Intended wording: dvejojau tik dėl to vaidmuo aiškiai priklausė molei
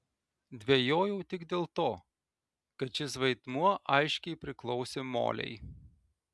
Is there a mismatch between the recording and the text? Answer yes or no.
yes